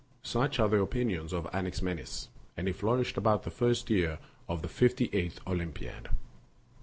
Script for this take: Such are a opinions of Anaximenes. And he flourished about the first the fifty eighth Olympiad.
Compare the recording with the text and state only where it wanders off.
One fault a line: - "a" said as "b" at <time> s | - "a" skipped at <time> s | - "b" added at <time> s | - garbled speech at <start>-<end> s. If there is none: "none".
- "a" said as "the" at 0.7 s
- "year of" added at 3.9 s